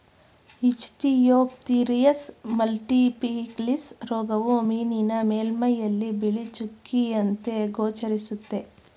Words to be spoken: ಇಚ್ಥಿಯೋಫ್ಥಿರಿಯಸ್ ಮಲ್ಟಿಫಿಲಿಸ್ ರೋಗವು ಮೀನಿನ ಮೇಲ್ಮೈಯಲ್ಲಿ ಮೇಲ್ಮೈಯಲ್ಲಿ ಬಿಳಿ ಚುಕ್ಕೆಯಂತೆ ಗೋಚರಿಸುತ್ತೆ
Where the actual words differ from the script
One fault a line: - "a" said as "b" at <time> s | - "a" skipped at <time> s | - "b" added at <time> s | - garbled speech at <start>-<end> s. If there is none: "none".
- "ಮೇಲ್ಮೈಯಲ್ಲಿ" skipped at 6.1 s